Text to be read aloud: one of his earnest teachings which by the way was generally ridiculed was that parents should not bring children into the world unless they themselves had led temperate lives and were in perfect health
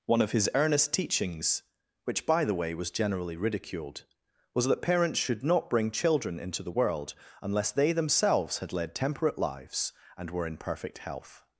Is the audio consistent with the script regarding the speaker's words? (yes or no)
yes